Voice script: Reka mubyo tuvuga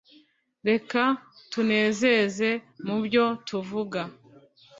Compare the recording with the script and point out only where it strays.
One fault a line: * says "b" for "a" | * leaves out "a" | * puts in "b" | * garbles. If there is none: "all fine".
* puts in "tunezeze"